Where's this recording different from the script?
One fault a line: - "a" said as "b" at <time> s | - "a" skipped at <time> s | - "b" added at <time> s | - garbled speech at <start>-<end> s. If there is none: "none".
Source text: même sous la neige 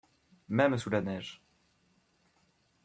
none